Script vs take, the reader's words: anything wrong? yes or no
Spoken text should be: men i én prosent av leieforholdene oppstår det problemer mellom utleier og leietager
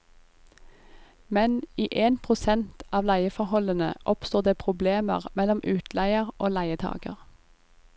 no